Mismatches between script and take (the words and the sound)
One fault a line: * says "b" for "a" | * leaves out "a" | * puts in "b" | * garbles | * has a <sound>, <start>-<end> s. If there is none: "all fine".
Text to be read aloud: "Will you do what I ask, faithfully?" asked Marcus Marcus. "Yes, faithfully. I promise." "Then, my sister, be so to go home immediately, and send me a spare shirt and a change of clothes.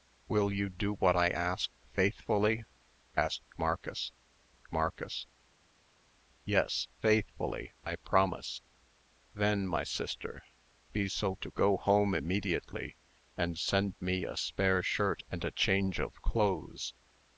all fine